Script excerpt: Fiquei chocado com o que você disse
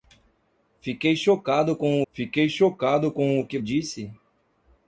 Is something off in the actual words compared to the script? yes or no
yes